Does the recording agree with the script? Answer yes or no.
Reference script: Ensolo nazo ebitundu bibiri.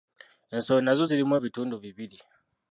no